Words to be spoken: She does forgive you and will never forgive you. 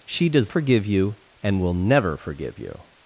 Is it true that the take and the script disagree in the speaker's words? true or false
false